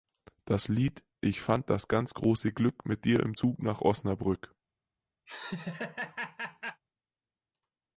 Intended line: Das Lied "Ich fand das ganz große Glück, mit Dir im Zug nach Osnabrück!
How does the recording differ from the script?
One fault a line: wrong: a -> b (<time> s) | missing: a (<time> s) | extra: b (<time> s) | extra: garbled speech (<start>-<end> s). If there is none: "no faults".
no faults